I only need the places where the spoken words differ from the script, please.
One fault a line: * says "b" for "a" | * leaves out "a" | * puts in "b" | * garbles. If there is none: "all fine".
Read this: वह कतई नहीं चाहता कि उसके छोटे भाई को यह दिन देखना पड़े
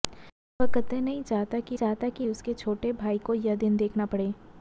* puts in "चाहता कि"